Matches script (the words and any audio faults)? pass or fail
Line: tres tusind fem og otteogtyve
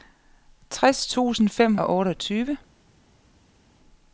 pass